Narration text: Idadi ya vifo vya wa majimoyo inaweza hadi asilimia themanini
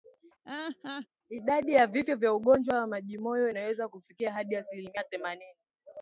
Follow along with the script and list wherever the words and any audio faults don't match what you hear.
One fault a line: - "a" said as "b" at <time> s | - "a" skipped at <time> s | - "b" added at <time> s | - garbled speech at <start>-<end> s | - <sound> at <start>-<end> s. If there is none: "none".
- laugh at 0.4-1.1 s
- "ugonjwa" added at 2.3 s
- "kufikia" added at 3.9 s